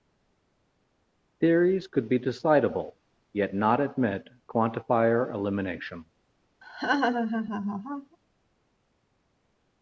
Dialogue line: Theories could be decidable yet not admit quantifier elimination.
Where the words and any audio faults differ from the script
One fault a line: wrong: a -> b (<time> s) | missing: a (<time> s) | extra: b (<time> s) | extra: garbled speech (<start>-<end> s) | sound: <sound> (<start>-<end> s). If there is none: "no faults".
sound: laugh (6.6-8.2 s)